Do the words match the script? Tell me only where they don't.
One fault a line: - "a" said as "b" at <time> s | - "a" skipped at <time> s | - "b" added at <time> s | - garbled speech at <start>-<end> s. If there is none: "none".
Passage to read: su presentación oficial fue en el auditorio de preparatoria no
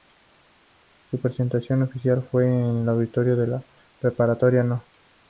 - "la" added at 3.5 s